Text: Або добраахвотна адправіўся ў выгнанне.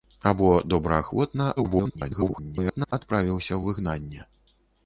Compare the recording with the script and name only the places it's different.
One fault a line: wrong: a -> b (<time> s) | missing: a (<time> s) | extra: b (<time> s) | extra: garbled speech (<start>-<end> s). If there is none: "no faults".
extra: garbled speech (1.6-2.9 s)